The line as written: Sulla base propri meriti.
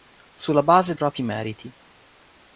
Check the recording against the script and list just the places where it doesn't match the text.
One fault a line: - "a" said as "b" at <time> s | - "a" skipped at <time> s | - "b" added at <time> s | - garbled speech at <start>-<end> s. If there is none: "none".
none